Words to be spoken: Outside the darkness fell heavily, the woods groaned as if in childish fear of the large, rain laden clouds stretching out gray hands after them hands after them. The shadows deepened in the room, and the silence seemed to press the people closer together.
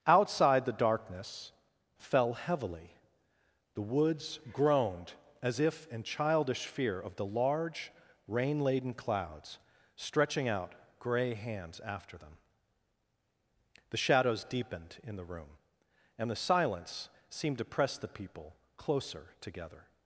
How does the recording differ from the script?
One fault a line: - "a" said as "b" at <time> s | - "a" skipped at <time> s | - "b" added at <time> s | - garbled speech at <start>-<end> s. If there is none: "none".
- "hands after them" skipped at 12.4 s